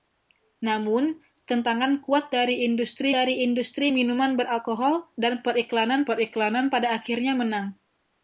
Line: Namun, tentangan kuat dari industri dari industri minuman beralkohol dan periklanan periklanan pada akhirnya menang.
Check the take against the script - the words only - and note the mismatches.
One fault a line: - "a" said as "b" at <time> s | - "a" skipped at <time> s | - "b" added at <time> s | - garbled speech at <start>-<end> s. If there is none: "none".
none